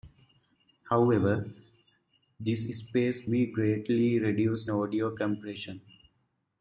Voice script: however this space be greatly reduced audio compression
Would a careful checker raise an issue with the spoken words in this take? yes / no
no